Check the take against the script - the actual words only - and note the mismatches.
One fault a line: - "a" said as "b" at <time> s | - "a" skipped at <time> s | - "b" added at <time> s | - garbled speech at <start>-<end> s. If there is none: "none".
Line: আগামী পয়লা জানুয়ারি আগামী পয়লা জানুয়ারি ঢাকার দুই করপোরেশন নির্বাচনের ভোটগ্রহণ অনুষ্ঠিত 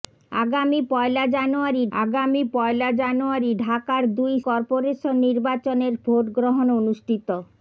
none